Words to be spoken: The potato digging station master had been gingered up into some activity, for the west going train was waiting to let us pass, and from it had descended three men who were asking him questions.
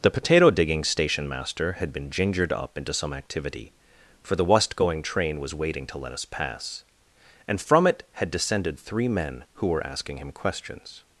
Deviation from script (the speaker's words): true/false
false